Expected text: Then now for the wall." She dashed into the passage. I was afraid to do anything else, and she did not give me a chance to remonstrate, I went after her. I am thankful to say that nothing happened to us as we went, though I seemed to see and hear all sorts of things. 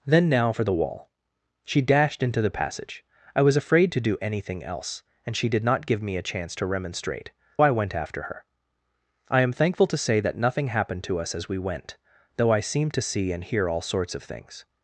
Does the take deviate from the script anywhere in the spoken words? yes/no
no